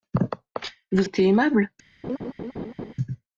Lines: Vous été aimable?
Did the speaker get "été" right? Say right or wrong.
right